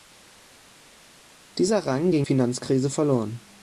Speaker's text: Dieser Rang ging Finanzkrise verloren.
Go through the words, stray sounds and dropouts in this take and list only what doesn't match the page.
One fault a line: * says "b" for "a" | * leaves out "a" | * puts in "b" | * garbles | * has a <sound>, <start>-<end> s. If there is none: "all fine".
all fine